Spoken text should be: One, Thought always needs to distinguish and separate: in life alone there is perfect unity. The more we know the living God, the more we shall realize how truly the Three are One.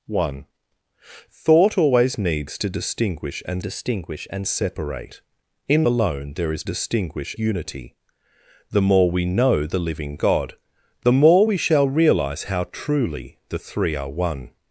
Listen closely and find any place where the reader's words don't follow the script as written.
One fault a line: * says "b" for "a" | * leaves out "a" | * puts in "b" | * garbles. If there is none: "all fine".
* puts in "distinguish and"
* leaves out "life"
* says "distinguish" for "perfect"